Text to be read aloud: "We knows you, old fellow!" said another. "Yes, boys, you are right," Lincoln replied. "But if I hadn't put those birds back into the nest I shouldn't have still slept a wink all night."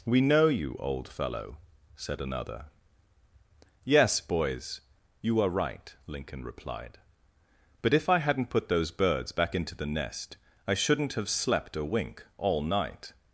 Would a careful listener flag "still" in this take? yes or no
yes